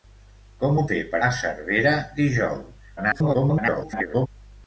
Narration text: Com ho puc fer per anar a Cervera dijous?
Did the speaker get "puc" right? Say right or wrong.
wrong